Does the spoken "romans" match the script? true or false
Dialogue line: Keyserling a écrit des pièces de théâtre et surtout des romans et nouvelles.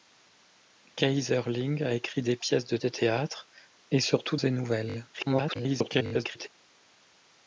false